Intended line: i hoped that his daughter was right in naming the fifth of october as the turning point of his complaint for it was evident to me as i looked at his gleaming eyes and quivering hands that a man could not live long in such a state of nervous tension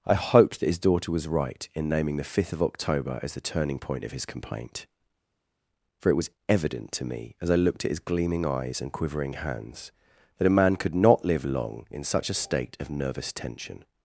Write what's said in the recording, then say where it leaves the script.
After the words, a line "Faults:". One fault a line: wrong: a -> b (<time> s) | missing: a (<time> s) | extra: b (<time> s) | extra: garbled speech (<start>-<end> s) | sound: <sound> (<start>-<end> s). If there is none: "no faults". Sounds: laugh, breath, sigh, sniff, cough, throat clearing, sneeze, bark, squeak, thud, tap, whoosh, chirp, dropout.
i hoped that his daughter was right in naming the fifth of october as the turning point of his complaint for it was evident to me as i looked at his gleaming eyes and quivering hands that a man could not live long in such a state of nervous tension
Faults:
no faults